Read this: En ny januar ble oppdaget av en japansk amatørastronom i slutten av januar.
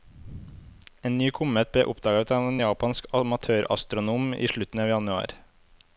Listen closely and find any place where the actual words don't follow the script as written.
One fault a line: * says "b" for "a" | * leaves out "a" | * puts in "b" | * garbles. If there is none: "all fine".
* says "komet" for "januar"